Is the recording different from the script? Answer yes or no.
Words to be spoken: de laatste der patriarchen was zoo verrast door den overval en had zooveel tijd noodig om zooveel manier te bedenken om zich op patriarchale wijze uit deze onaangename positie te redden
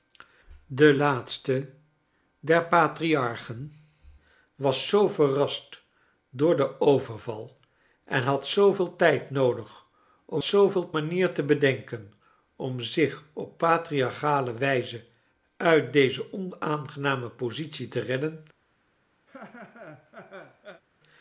no